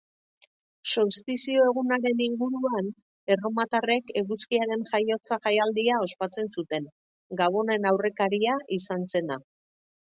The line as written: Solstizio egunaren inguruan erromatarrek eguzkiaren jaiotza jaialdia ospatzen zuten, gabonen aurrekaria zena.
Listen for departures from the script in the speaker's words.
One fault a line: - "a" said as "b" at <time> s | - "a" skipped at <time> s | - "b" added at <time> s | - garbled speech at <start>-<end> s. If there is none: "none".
- "izan" added at 8.8 s